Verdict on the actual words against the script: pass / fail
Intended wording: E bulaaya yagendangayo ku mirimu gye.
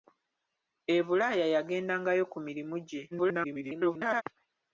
fail